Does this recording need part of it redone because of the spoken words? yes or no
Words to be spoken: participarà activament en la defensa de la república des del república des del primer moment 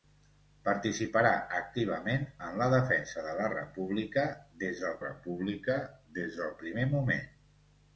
no